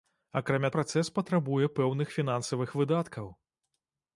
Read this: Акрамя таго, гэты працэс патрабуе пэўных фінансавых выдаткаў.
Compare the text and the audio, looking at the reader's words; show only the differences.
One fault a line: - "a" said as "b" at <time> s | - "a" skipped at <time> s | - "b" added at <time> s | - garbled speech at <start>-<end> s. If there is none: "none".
- "таго гэты" skipped at 0.7 s